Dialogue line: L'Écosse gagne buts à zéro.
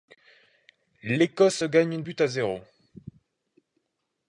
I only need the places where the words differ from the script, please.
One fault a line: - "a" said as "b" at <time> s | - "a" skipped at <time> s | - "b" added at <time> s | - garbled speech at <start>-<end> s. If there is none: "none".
none